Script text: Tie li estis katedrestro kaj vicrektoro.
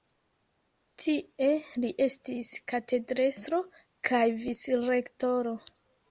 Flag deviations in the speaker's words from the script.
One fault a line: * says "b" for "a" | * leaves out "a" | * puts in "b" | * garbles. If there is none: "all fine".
all fine